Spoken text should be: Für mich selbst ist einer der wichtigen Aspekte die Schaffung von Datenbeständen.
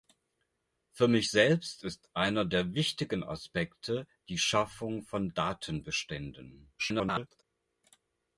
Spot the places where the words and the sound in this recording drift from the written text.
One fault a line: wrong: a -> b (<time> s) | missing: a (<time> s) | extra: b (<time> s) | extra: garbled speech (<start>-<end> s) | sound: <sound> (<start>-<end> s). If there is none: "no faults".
extra: garbled speech (6.8-7.4 s)